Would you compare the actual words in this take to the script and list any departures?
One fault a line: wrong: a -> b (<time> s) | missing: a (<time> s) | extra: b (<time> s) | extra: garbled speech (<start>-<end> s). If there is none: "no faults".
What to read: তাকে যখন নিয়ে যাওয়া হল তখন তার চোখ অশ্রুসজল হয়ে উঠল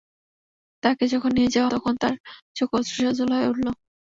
missing: হল (1.7 s)